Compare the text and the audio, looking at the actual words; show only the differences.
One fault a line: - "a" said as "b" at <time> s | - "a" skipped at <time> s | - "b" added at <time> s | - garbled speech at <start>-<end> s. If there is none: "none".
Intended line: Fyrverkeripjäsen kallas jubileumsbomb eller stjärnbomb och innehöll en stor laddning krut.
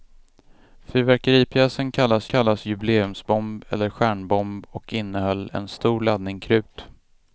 - "kallas" added at 2.3 s